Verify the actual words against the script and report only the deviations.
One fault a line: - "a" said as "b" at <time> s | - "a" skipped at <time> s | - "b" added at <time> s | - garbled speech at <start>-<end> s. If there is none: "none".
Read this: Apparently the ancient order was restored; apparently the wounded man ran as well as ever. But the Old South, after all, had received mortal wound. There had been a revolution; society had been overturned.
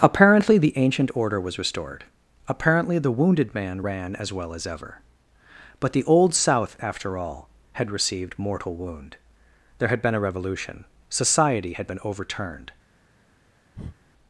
none